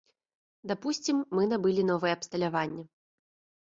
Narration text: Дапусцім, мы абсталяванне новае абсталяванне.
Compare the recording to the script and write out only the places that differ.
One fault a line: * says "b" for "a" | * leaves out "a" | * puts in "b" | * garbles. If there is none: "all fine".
* says "набылі" for "абсталяванне"